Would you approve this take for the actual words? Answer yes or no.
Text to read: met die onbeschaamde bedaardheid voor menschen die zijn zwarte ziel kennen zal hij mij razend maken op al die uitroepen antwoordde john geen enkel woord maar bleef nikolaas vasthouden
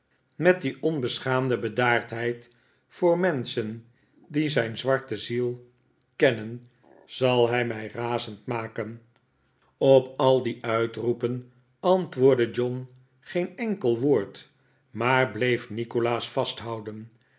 yes